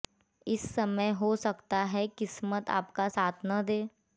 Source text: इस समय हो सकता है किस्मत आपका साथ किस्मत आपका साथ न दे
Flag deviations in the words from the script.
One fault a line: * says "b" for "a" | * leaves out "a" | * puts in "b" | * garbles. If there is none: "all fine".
* leaves out "किस्मत आपका साथ"